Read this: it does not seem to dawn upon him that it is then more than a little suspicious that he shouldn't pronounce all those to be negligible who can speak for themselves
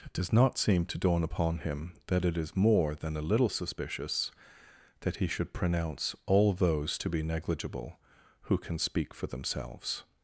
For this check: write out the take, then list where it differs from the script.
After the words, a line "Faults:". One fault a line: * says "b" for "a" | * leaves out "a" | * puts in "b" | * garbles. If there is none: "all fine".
it does not seem to dawn upon him that it is more than a little suspicious that he should pronounce all those to be negligible who can speak for themselves
Faults:
* leaves out "then"
* says "should" for "shouldn't"